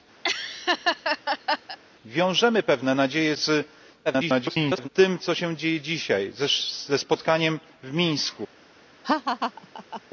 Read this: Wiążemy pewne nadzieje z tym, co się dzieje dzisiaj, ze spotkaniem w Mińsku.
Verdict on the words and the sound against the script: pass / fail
fail